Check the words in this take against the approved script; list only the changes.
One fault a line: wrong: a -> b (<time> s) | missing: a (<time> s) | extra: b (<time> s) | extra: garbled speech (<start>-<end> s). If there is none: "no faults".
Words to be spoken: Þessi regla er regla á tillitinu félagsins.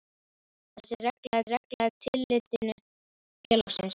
no faults